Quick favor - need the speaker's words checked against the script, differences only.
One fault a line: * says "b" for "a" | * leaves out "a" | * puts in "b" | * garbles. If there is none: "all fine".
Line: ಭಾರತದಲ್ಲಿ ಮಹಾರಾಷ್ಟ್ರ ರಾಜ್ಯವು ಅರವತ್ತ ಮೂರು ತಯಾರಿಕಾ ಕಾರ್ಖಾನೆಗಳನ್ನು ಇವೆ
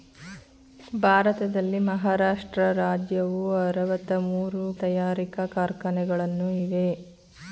all fine